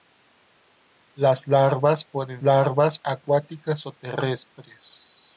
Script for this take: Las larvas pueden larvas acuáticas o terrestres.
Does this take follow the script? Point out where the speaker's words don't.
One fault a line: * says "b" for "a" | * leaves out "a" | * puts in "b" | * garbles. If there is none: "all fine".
all fine